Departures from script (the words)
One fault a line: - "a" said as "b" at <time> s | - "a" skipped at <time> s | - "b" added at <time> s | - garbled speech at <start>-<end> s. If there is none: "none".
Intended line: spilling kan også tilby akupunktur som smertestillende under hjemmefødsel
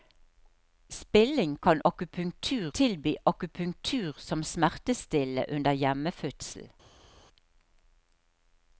- "også" said as "akupunktur" at 1.8 s